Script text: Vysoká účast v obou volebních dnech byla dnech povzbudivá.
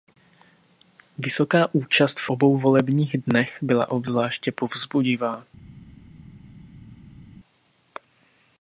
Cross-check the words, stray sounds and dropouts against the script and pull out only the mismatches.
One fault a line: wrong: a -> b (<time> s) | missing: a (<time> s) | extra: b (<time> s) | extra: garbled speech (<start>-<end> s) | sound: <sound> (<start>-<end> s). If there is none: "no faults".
wrong: dnech -> obzvláště (3.9 s)